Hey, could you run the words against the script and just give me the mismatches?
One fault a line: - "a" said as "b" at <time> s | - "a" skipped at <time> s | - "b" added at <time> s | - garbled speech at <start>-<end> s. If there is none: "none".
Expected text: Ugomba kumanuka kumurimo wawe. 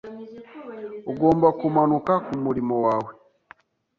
none